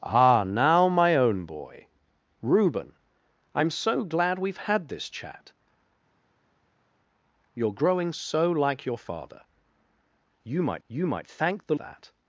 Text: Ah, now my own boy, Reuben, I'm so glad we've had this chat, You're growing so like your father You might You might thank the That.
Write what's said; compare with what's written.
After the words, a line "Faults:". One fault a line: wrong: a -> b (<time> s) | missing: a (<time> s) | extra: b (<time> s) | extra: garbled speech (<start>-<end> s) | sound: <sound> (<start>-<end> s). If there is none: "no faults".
Ah, now my own boy, Reuben, I'm so glad we've had this chat, You're growing so like your father You might You might thank the That.
Faults:
no faults